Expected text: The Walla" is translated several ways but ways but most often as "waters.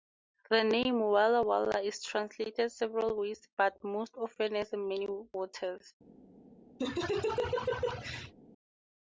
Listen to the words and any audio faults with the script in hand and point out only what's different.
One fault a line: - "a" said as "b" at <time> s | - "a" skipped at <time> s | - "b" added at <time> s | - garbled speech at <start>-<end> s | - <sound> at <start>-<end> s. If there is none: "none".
- "name" added at 0.6 s
- "Walla" added at 1.4 s
- "ways but" skipped at 3.8 s
- "many" added at 4.7 s
- laugh at 6.8-8.3 s